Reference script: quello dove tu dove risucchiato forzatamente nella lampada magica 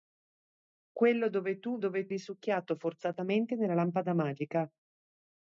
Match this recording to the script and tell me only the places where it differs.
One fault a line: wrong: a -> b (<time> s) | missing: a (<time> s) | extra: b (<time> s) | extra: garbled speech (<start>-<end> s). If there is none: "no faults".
no faults